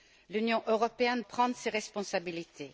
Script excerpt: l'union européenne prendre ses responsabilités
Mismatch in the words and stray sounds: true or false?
false